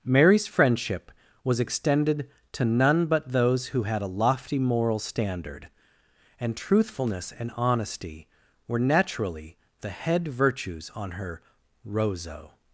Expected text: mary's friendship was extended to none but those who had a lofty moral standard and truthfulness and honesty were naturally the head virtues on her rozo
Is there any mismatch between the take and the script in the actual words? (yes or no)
no